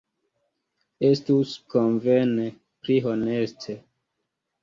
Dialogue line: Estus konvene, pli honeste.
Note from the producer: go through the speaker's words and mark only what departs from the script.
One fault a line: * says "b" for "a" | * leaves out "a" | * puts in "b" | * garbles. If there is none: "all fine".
all fine